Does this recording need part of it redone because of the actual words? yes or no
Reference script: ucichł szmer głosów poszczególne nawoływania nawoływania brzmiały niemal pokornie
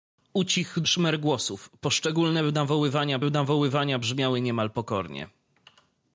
no